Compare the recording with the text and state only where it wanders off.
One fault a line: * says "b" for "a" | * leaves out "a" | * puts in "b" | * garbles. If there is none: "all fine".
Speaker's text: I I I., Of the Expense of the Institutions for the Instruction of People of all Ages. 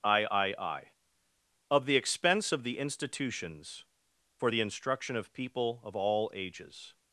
all fine